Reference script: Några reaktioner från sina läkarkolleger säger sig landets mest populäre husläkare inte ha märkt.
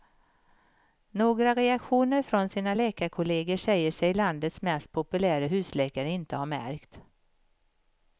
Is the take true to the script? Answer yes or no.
yes